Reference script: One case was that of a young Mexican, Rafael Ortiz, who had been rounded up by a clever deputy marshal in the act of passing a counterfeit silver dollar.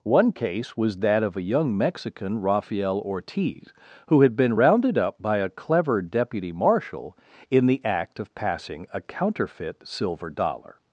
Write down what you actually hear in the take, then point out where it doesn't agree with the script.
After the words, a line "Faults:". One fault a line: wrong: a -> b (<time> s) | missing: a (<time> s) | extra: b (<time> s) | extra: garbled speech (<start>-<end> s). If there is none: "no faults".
One case was that of a young Mexican, Rafael Ortiz, who had been rounded up by a clever deputy marshal in the act of passing a counterfeit silver dollar.
Faults:
no faults